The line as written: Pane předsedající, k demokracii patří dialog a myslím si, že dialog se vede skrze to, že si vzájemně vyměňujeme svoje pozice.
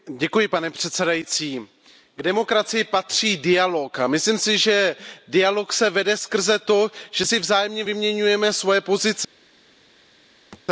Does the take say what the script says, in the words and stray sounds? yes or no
no